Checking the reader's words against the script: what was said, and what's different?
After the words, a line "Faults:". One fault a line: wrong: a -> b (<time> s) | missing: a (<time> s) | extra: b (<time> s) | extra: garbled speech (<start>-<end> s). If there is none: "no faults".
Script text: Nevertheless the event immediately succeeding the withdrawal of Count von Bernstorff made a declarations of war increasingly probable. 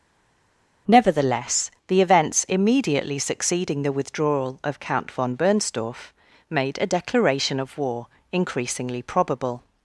Nevertheless the events immediately succeeding the withdrawal of Count von Bernstorff made a declaration of war increasingly probable.
Faults:
wrong: event -> events (2.0 s)
wrong: declarations -> declaration (6.9 s)